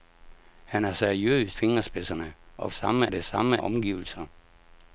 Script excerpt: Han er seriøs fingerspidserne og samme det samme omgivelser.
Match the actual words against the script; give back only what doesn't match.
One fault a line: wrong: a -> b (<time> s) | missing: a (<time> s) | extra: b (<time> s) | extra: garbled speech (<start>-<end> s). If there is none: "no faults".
no faults